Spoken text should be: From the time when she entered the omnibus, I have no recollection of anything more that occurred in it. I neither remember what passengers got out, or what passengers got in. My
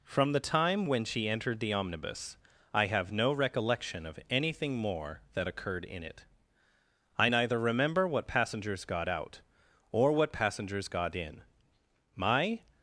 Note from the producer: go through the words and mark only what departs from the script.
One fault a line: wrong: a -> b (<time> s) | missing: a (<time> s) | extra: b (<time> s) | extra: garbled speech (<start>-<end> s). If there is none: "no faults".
no faults